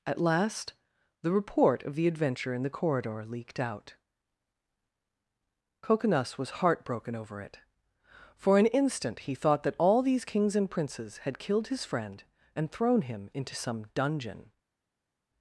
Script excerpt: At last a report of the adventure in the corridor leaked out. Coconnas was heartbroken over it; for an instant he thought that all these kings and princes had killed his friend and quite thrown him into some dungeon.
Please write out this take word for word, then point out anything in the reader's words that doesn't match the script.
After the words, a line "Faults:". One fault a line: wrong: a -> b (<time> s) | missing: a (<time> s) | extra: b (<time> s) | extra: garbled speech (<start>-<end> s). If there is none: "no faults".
At last the report of the adventure in the corridor leaked out. Coconnas was heartbroken over it; for an instant he thought that all these kings and princes had killed his friend and thrown him into some dungeon.
Faults:
wrong: a -> the (1.2 s)
missing: quite (12.7 s)